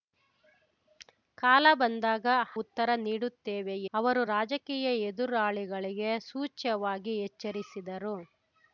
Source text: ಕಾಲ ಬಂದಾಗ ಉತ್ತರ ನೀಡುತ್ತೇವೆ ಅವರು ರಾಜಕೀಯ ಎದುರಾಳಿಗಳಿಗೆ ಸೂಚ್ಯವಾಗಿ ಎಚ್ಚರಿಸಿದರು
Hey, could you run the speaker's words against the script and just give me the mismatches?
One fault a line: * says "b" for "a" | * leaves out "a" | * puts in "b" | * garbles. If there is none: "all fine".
all fine